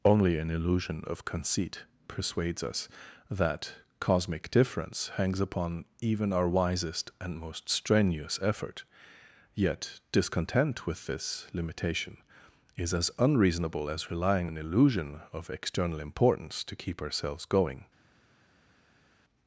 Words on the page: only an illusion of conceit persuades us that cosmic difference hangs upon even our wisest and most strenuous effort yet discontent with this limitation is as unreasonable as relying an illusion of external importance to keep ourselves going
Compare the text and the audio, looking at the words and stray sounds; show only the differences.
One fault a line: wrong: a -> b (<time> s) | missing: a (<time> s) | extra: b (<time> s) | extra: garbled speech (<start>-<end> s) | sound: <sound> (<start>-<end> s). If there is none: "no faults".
no faults